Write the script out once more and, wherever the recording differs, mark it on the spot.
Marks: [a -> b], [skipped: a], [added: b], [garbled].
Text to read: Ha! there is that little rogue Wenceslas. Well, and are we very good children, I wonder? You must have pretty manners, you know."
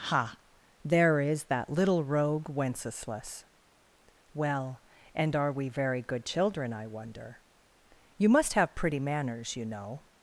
Ha! there is that little rogue Wenceslas. Well, and are we very good children, I wonder? You must have pretty manners, you know."